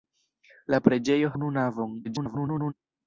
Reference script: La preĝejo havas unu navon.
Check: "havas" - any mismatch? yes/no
yes